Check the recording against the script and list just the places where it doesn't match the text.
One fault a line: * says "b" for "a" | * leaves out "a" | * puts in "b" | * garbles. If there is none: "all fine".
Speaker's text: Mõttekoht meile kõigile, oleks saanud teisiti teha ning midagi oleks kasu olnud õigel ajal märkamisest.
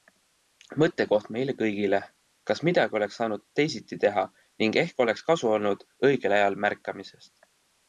* puts in "kas midagi"
* says "ehk" for "midagi"